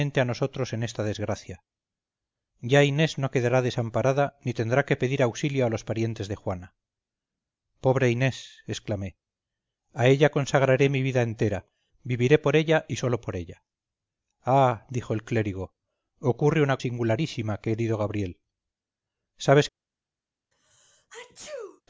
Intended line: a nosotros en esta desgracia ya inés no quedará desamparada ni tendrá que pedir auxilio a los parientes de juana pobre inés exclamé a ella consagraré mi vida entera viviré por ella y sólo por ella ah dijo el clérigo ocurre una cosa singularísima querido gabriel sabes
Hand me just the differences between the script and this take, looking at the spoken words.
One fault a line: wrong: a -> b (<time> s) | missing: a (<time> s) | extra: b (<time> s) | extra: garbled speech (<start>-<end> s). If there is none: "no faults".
missing: cosa (16.8 s)